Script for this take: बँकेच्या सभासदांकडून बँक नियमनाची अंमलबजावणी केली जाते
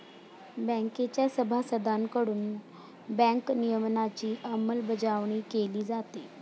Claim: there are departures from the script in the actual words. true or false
false